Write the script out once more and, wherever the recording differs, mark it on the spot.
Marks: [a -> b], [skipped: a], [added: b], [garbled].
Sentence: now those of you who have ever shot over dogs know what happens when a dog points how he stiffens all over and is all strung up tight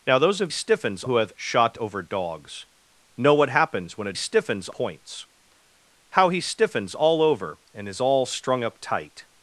now those of [you -> stiffens] who have [skipped: ever] shot over dogs know what happens when a [dog -> stiffens] points how he stiffens all over and is all strung up tight